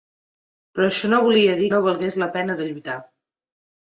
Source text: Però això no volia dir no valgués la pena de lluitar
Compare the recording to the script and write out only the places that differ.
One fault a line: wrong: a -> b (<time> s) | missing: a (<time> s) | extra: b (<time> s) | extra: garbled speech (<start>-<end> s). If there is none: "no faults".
no faults